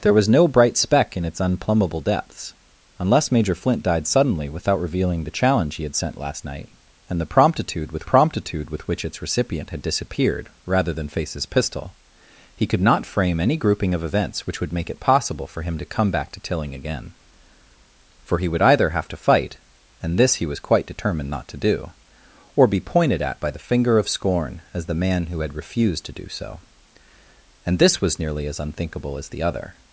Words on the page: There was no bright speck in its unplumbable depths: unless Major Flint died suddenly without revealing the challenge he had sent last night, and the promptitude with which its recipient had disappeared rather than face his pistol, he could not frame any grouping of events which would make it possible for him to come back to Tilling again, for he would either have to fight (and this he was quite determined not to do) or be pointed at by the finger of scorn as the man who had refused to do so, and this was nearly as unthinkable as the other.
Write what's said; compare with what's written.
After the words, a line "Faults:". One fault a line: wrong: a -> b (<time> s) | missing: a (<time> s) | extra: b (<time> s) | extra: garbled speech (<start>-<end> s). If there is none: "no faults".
There was no bright speck in its unplumbable depths: unless Major Flint died suddenly without revealing the challenge he had sent last night, and the promptitude with promptitude with which its recipient had disappeared rather than face his pistol, he could not frame any grouping of events which would make it possible for him to come back to Tilling again, for he would either have to fight (and this he was quite determined not to do) or be pointed at by the finger of scorn as the man who had refused to do so, and this was nearly as unthinkable as the other.
Faults:
extra: promptitude with (8.1 s)